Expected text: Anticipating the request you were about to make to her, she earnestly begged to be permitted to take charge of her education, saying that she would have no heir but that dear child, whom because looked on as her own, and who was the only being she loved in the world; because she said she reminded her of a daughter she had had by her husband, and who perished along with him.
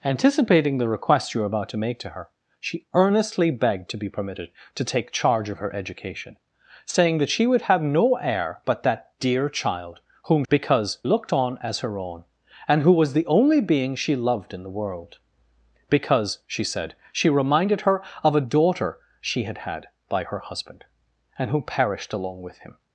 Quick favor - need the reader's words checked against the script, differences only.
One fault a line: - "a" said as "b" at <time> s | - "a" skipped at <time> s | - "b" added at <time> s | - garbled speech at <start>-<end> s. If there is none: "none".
none